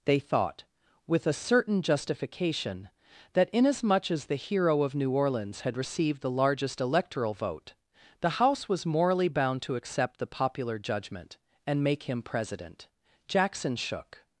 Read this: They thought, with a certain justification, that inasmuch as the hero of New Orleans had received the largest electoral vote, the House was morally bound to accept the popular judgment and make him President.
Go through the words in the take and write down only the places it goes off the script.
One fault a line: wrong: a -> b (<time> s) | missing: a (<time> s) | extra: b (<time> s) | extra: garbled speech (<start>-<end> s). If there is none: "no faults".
extra: Jackson shook (13.3 s)